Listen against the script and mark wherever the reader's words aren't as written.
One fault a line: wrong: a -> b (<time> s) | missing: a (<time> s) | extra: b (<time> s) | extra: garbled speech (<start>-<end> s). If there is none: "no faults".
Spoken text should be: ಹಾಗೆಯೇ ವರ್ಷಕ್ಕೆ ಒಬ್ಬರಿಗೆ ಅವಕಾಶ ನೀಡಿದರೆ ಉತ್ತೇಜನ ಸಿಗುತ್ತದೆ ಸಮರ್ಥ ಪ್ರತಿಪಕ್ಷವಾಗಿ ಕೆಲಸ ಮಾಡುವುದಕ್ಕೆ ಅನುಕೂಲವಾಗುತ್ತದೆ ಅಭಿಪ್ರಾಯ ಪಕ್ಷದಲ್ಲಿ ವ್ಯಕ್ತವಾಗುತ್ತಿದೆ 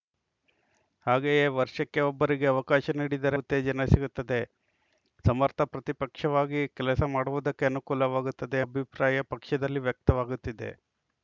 no faults